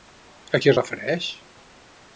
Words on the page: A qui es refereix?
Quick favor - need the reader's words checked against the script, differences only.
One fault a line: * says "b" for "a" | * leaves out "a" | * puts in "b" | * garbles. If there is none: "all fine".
all fine